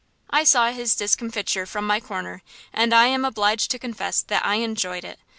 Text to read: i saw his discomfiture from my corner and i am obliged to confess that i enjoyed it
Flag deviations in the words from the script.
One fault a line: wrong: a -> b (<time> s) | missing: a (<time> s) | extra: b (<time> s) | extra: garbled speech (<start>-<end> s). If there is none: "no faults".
no faults